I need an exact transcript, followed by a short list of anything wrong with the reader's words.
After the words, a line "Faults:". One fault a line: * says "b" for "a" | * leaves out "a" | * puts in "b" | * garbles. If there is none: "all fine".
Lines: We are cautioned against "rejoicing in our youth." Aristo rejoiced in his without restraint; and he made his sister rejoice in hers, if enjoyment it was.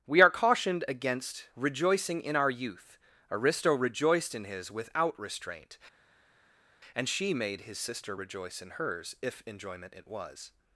We are cautioned against "rejoicing in our youth." Aristo rejoiced in his without restraint; and she made his sister rejoice in hers, if enjoyment it was.
Faults:
* says "she" for "he"